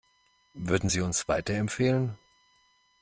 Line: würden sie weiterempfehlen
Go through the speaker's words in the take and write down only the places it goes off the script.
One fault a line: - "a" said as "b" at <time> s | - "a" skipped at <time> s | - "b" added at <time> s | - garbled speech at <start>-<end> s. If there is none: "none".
- "uns" added at 1.0 s